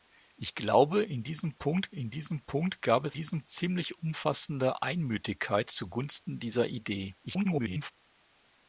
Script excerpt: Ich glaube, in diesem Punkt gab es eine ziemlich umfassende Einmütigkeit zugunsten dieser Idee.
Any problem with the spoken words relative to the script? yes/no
yes